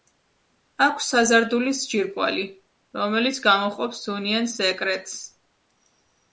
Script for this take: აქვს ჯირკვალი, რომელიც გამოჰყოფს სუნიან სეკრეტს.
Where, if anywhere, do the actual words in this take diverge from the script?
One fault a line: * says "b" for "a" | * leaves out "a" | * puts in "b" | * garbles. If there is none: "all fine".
* puts in "საზარდულის"